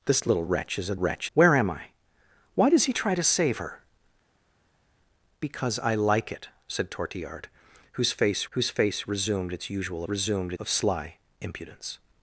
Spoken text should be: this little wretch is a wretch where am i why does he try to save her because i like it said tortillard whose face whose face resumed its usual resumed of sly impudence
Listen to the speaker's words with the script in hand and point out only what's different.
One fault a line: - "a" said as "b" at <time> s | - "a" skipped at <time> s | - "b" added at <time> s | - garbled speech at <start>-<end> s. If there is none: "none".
none